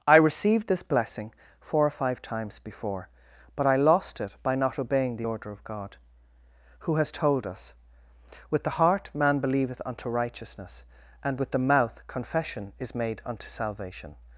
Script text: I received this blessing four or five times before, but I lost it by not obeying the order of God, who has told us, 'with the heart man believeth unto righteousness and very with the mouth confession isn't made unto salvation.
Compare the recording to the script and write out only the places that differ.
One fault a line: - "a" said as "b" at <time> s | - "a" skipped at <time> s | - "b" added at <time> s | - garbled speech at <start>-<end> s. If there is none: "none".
- "very" skipped at 11.4 s
- "isn't" said as "is" at 12.8 s